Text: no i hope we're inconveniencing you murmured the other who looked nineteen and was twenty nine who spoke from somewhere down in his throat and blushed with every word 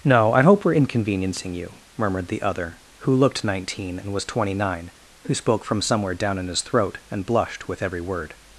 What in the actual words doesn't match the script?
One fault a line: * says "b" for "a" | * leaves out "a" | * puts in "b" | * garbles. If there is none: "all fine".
all fine